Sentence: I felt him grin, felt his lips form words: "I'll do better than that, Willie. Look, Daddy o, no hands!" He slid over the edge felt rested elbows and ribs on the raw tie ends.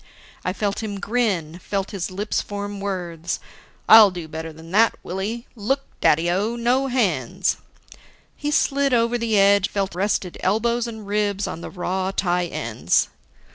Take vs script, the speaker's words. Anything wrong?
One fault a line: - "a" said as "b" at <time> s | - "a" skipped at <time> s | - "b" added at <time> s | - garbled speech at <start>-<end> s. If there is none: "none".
none